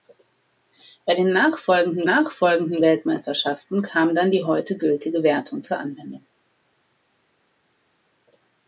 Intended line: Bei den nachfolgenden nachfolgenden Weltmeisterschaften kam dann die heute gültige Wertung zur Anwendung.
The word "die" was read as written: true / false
true